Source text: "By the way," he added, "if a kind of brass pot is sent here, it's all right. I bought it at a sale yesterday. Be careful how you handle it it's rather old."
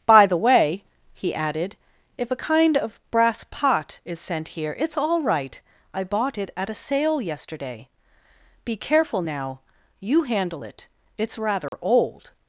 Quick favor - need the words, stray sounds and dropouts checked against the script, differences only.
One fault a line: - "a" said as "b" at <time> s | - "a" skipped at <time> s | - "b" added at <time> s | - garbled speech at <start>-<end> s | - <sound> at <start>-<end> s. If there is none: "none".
- "how" said as "now" at 9.2 s
- dropout at 11.7-11.7 s